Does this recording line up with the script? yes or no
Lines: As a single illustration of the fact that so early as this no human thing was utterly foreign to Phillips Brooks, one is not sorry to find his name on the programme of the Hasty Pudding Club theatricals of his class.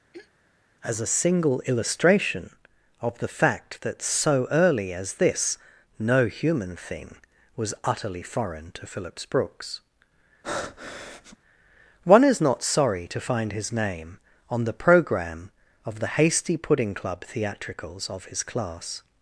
yes